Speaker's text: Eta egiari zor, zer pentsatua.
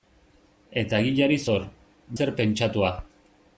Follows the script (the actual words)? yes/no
yes